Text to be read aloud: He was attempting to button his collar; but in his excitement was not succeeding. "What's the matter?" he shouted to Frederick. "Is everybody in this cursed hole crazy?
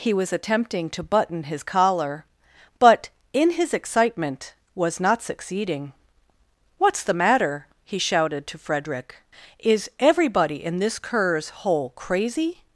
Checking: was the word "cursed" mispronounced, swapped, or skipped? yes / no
yes